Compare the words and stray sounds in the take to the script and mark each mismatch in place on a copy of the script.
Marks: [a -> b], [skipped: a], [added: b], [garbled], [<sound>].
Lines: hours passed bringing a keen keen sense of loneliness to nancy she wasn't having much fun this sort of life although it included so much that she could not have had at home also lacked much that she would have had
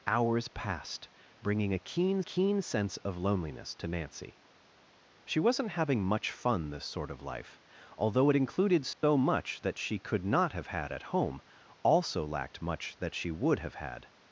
hours passed bringing a keen keen sense of loneliness to nancy she wasn't having much fun this sort of life although it included so [dropout] much that she could not have had at home also lacked much that she would have had